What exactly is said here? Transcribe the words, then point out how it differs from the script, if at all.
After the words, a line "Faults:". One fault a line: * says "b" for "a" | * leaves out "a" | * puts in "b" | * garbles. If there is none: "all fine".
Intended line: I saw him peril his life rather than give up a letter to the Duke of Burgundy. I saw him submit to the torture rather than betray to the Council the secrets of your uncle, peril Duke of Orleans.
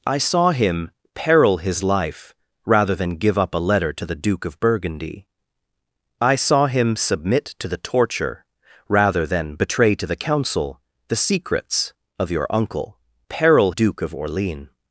I saw him peril his life rather than give up a letter to the Duke of Burgundy. I saw him submit to the torture rather than betray to the Council the secrets of your uncle, peril Duke of Orleans.
Faults:
all fine